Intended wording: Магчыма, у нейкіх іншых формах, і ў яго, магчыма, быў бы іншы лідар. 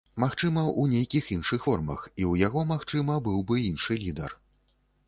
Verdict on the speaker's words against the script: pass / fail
pass